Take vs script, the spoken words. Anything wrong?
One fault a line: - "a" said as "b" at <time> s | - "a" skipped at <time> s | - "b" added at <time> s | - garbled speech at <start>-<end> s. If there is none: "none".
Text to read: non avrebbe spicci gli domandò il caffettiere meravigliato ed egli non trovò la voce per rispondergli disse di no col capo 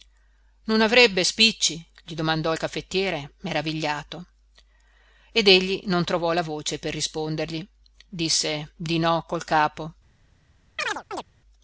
none